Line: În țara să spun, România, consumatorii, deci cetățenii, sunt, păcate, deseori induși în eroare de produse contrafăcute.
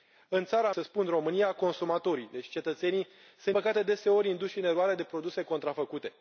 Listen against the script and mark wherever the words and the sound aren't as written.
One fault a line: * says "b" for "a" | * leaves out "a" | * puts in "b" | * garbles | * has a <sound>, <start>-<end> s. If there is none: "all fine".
all fine